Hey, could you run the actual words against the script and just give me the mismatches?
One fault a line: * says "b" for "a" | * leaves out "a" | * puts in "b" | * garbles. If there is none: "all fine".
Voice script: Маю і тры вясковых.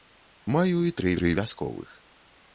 * puts in "тры"